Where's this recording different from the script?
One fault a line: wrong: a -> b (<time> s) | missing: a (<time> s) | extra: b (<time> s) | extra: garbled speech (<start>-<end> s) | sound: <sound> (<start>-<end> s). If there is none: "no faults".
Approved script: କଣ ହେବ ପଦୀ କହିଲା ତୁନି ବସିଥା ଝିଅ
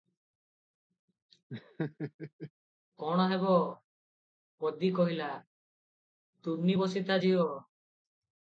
sound: laugh (1.5-2.5 s)